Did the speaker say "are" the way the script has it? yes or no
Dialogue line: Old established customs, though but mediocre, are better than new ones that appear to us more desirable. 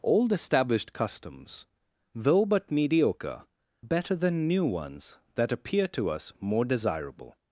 no